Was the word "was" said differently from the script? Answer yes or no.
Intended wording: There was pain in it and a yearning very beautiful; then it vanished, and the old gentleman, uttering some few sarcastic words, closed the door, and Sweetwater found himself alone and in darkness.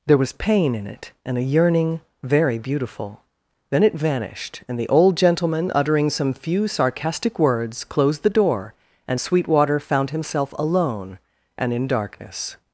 no